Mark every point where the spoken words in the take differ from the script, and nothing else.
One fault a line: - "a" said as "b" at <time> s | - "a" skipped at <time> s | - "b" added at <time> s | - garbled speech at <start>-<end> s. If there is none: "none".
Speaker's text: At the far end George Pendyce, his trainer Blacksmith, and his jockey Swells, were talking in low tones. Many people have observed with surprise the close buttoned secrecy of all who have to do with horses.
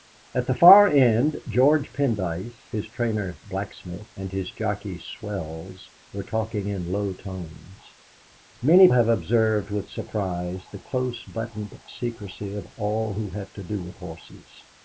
- "people" skipped at 8.9 s